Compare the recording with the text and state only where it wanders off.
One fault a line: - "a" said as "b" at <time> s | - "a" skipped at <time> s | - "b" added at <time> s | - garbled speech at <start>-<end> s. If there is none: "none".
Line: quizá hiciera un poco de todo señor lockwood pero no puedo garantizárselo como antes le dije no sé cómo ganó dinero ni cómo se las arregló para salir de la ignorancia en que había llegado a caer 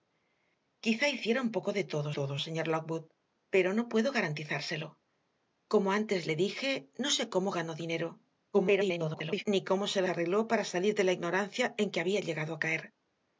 - "todo" added at 2.2 s
- garbled speech at 8.5-9.4 s
- "las" skipped at 10.0 s